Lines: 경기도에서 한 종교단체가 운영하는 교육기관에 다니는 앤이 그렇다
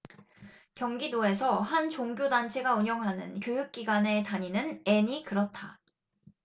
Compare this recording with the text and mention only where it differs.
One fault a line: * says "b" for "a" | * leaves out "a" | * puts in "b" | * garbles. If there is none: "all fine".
all fine